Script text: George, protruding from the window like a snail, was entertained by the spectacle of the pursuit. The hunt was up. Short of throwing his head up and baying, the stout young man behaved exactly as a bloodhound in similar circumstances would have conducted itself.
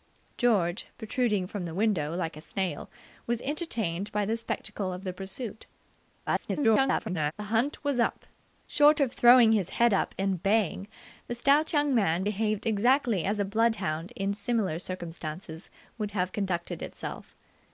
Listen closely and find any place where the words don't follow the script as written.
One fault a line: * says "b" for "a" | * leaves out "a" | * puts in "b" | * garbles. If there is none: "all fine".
* garbles